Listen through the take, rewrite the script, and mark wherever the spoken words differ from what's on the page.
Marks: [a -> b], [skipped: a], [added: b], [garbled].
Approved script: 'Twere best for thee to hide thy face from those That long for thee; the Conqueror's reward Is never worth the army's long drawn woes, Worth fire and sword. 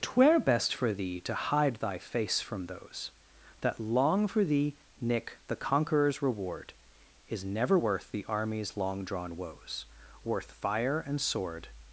'Twere best for thee to hide thy face from those That long for thee; [added: nick] the Conqueror's reward Is never worth the army's long drawn woes, Worth fire and sword.